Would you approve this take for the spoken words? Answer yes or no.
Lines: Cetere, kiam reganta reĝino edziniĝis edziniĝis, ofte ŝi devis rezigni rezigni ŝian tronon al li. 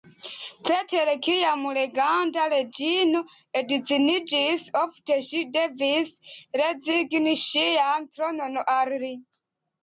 no